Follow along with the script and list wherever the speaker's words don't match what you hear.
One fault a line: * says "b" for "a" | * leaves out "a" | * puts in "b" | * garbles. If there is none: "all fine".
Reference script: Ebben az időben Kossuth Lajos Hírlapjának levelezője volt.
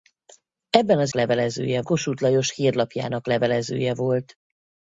* says "levelezője" for "időben"